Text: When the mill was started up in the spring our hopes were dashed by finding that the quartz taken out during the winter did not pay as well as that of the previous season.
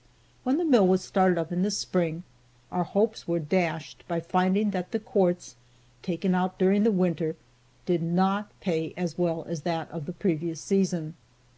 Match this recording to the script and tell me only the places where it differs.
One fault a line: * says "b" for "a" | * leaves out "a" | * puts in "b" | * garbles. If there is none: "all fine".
all fine